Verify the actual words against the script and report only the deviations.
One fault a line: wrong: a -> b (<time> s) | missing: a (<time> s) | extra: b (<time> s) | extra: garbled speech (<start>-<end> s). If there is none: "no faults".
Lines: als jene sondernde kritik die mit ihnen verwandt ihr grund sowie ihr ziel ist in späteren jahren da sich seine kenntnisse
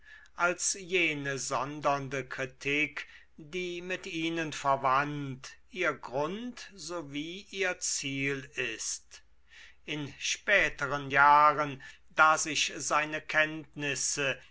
no faults